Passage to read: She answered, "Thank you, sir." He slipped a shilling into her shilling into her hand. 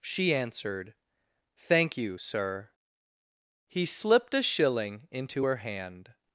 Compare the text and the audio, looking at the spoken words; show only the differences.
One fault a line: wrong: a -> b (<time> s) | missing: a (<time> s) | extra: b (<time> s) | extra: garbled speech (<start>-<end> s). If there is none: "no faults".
missing: shilling into her (5.6 s)